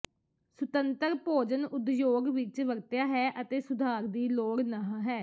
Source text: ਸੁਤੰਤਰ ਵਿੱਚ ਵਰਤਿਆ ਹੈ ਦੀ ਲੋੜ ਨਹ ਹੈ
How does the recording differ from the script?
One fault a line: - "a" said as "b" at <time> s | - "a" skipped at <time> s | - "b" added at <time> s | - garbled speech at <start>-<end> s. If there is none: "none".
- "ਭੋਜਨ ਉਦਯੋਗ" added at 1.2 s
- "ਅਤੇ ਸੁਧਾਰ" added at 3.4 s